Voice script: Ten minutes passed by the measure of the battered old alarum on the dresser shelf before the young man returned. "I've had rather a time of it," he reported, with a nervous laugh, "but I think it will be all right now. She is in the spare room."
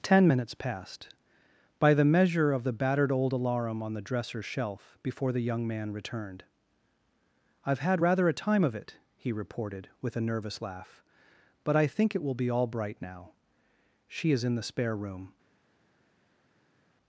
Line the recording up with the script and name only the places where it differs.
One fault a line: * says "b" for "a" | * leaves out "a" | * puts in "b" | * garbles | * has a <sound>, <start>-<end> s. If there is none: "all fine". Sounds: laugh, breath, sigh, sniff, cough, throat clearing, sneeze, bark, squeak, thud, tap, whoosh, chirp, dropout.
* says "bright" for "right"